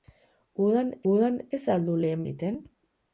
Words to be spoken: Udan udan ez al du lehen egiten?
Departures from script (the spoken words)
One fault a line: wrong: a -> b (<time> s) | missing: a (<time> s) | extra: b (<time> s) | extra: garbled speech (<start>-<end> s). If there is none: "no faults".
no faults